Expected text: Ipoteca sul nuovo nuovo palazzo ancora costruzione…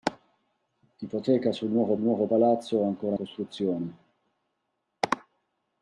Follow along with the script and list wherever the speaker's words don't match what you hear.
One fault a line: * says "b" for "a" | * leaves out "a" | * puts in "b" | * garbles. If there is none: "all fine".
all fine